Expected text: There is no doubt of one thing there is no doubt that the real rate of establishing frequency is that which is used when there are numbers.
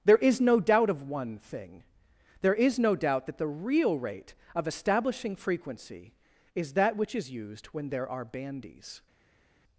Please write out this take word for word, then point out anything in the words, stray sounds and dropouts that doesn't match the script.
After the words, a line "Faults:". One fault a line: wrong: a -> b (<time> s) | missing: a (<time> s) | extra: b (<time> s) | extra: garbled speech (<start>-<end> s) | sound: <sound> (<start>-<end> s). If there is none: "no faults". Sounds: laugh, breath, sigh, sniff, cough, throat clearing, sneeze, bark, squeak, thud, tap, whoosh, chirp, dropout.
There is no doubt of one thing there is no doubt that the real rate of establishing frequency is that which is used when there are bandies.
Faults:
wrong: numbers -> bandies (8.2 s)